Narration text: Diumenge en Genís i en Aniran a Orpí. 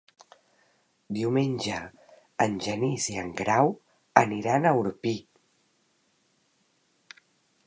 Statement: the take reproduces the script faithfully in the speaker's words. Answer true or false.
false